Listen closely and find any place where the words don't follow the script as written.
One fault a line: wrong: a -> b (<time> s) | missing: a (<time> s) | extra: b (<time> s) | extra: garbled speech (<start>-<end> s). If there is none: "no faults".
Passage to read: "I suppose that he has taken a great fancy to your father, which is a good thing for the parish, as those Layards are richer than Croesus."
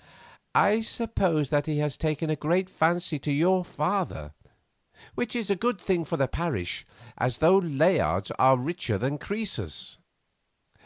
no faults